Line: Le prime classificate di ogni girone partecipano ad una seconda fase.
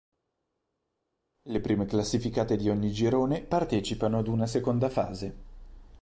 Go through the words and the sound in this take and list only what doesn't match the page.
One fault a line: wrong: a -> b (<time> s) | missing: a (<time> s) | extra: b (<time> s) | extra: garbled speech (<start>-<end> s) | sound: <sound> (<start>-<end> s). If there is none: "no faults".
no faults